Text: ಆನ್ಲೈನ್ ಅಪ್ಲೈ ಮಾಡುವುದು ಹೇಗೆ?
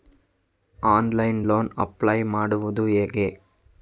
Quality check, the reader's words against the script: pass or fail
fail